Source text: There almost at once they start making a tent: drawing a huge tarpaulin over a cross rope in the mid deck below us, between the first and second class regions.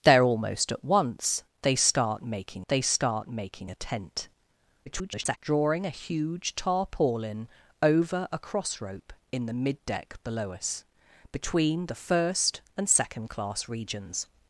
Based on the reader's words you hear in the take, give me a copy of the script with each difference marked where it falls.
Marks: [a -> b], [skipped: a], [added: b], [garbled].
There almost at once they start making [added: they start making] a tent: [garbled] drawing a huge tarpaulin over a cross rope in the mid deck below us, between the first and second class regions.